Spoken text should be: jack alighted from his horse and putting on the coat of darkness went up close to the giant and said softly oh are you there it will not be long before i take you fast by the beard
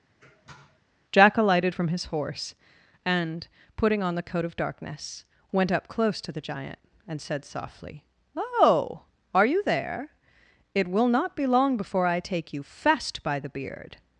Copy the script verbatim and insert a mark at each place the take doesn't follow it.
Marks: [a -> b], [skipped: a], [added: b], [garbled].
jack alighted from his horse and putting on the coat of darkness went up close to the giant and said softly oh are you there it will not be long before i take you fast by the beard